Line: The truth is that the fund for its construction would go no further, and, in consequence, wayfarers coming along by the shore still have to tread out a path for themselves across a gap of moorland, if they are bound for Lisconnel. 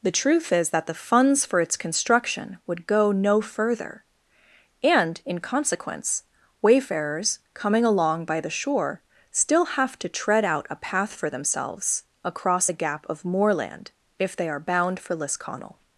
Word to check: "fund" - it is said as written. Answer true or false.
false